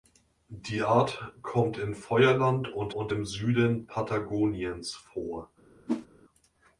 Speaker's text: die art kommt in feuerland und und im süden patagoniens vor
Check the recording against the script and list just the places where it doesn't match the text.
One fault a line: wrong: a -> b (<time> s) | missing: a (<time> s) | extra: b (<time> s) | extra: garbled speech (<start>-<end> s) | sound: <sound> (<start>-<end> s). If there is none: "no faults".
sound: whoosh (5.9-6.1 s)